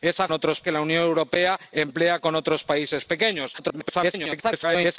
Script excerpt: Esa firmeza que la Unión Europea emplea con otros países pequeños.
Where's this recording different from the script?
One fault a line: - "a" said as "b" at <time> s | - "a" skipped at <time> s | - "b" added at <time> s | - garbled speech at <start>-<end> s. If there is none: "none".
- "firmeza" said as "otros" at 0.3 s
- garbled speech at 3.6-5.0 s